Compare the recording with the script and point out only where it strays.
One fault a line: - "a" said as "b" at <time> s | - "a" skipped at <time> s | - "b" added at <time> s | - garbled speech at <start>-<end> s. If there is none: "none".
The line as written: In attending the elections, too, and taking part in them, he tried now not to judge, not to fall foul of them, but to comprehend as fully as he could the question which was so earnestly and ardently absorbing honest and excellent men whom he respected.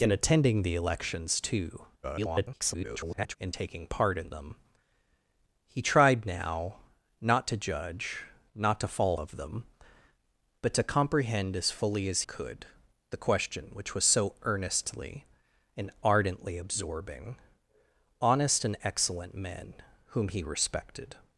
- garbled speech at 2.0-3.4 s
- "foul" skipped at 9.2 s
- "he" skipped at 12.2 s